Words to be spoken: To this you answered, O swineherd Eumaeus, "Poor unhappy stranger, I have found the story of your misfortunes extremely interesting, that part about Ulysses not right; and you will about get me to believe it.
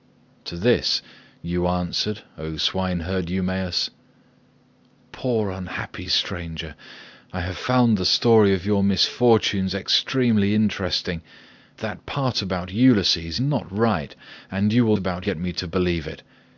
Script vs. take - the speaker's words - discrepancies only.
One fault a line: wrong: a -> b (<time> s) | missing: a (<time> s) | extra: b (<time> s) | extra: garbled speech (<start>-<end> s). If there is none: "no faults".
no faults